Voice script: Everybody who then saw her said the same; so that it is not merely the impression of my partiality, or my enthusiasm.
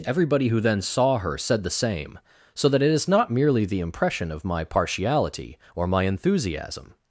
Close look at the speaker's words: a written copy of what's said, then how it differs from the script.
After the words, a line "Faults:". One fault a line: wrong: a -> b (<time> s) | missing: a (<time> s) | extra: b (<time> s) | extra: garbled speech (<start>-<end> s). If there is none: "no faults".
Everybody who then saw her said the same; so that it is not merely the impression of my partiality, or my enthusiasm.
Faults:
no faults